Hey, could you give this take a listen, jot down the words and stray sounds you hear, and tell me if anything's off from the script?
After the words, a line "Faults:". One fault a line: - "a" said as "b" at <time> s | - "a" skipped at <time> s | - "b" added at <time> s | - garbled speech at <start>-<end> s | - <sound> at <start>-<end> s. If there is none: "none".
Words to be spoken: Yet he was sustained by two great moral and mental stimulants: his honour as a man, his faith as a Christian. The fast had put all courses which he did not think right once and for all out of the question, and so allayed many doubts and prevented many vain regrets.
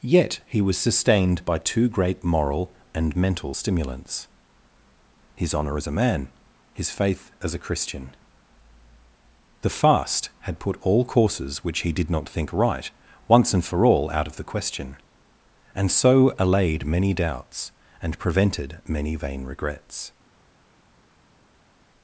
Yet he was sustained by two great moral and mental stimulants: his honour as a man, his faith as a Christian. The fast had put all courses which he did not think right once and for all out of the question, and so allayed many doubts and prevented many vain regrets.
Faults:
none